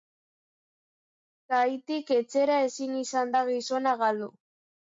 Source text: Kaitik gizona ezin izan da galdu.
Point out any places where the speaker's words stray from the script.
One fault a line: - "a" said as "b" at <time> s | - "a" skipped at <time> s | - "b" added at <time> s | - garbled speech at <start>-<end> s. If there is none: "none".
- "gizona" said as "etxera" at 2.2 s
- "gizona" added at 3.5 s